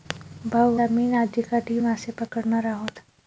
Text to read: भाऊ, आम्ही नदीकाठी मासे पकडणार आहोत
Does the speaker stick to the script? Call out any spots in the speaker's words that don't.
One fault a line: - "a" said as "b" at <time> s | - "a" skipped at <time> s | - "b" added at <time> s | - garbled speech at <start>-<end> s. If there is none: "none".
none